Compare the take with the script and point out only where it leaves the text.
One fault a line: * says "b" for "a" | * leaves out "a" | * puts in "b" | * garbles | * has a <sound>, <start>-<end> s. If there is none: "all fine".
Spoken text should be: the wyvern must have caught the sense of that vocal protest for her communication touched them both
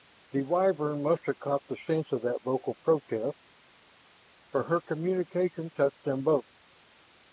all fine